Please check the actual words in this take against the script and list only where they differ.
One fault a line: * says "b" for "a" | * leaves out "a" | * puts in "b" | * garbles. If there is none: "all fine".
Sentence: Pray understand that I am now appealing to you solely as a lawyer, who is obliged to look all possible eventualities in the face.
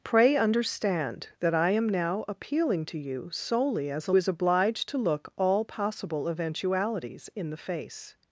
* leaves out "lawyer who"